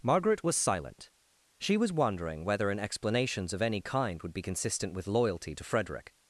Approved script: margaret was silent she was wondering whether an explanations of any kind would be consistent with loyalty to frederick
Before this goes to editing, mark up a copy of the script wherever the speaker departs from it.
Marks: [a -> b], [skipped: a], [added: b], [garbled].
margaret was silent she was wondering whether an explanations of any kind would be consistent with loyalty to frederick